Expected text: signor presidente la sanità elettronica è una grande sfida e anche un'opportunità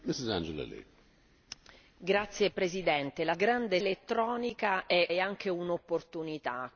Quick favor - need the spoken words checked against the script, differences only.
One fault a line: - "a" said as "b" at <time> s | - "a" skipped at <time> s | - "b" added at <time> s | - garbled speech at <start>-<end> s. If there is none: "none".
- "sanità" said as "grande" at 3.3 s
- "una grande sfida" skipped at 5.1 s